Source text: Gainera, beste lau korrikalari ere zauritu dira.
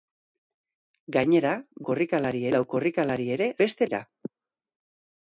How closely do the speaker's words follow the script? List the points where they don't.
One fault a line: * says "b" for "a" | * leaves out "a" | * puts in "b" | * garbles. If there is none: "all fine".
* says "korrikalari" for "beste"
* says "beste" for "zauritu"